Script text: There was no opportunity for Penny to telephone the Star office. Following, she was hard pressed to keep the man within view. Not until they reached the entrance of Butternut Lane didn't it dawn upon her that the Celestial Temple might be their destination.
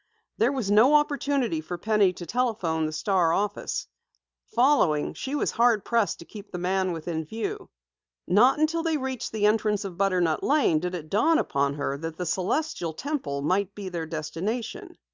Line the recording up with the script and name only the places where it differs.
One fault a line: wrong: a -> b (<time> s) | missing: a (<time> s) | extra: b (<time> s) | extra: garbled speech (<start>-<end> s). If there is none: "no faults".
wrong: didn't -> did (10.8 s)